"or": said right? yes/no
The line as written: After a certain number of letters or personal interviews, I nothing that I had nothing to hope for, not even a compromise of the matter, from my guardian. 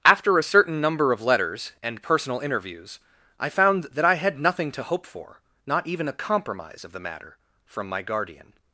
no